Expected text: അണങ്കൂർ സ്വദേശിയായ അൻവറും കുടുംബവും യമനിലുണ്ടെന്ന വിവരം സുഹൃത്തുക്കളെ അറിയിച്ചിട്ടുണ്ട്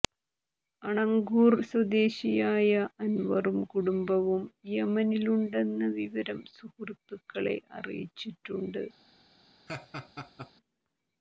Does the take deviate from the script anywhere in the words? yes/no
no